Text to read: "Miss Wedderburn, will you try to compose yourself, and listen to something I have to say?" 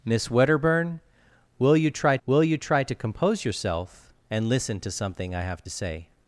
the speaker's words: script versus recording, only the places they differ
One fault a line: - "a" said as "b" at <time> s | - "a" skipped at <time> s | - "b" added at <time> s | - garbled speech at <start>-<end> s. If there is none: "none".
- "will you try" added at 2.3 s